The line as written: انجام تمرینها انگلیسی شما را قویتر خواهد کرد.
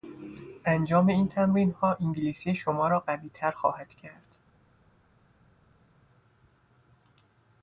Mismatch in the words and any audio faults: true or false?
true